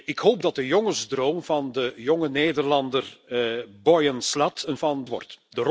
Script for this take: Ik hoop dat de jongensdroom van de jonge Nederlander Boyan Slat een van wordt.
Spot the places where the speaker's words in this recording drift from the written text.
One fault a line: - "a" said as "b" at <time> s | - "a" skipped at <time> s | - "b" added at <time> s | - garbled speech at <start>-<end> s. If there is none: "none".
none